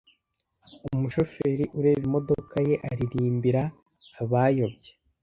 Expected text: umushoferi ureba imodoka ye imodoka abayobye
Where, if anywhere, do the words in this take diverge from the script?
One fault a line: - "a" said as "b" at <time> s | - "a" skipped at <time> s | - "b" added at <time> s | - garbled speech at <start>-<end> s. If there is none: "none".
- "imodoka" said as "aririmbira" at 2.9 s